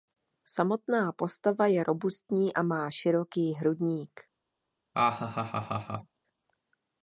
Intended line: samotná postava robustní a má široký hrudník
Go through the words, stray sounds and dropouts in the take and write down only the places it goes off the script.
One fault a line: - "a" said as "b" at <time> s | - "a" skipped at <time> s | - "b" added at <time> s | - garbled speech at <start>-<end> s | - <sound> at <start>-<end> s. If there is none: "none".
- "je" added at 1.7 s
- laugh at 4.9-6.2 s